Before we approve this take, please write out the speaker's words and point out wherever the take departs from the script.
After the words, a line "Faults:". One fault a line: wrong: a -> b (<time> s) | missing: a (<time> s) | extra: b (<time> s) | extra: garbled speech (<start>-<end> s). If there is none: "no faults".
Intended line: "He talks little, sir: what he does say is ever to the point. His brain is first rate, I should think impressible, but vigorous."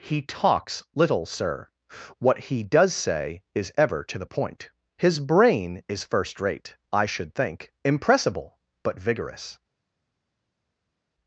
"He talks little, sir: what he does say is ever to the point. His brain is first rate, I should think impressible, but vigorous."
Faults:
no faults